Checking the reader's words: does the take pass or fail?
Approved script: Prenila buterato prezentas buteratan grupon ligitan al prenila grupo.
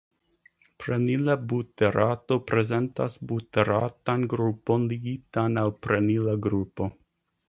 pass